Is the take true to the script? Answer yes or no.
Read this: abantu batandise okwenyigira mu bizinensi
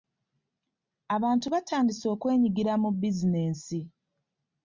yes